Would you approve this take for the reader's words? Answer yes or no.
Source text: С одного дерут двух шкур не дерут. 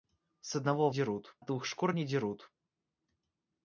yes